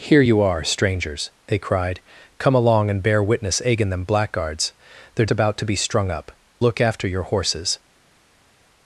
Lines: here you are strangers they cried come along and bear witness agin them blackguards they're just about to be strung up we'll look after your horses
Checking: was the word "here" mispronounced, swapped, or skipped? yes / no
no